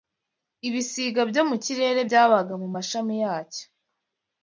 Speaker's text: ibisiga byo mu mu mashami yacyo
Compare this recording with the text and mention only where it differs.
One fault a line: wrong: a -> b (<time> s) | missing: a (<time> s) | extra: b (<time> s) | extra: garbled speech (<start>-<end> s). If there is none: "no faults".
extra: kirere byabaga (1.6 s)